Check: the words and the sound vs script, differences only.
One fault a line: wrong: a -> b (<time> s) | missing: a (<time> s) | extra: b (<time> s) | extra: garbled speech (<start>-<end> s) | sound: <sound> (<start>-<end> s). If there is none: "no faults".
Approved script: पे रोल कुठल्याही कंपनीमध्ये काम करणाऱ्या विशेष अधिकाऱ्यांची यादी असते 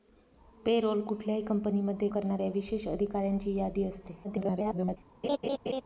missing: काम (2.1 s)
extra: garbled speech (4.2-5.0 s)
sound: laugh (5.2-5.8 s)